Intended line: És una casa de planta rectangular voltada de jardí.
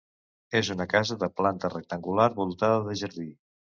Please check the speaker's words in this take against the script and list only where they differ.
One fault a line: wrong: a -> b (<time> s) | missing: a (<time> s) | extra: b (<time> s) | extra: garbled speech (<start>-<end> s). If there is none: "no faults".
no faults